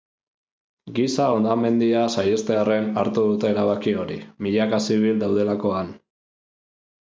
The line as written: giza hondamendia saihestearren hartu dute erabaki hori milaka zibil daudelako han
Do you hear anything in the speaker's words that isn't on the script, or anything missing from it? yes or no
no